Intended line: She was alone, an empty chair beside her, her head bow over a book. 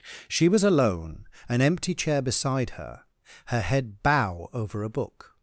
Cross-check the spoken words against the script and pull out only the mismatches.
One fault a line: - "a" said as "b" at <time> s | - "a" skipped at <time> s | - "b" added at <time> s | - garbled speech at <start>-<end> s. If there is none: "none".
none